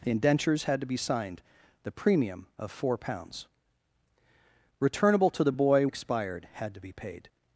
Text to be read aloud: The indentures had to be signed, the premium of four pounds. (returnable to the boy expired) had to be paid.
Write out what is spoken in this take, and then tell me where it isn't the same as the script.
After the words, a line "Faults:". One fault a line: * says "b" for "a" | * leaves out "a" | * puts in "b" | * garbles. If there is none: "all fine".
The indentures had to be signed, the premium of four pounds. (returnable to the boy expired) had to be paid.
Faults:
all fine